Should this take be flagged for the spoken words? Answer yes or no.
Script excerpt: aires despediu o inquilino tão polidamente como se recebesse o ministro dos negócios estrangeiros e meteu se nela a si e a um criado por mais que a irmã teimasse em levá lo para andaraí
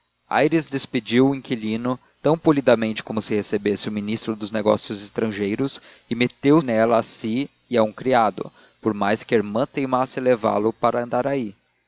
yes